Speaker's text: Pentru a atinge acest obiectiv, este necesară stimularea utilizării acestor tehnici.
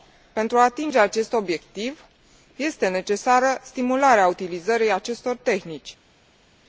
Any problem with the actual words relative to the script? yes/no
no